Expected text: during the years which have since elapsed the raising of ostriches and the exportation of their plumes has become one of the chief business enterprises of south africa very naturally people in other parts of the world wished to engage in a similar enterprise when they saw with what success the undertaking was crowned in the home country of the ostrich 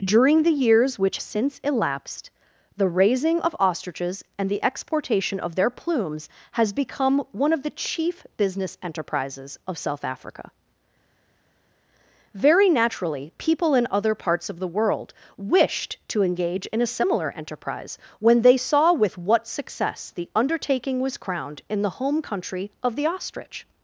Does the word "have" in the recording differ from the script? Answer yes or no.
yes